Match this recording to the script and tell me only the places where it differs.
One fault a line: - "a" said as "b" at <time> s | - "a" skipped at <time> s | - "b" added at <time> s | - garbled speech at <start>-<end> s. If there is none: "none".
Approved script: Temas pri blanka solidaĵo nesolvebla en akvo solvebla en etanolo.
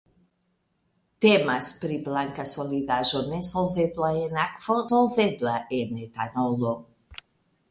none